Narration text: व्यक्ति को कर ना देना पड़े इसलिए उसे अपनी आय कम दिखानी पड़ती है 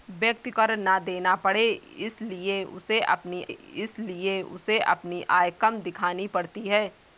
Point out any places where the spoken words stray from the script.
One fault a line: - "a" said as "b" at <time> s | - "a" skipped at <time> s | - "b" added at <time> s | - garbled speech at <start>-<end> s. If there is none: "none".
- "को" skipped at 0.5 s
- "इसलिए उसे अपनी" added at 3.5 s